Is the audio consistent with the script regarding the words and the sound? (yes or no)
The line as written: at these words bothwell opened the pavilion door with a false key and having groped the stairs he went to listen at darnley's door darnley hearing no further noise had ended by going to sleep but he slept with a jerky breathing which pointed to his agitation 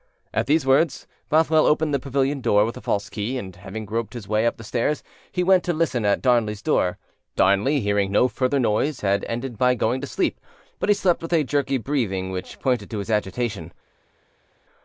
no